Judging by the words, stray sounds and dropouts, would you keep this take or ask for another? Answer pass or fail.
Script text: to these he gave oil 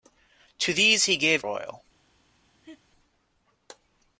fail